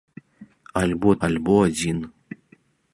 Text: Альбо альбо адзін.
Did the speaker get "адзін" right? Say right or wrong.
right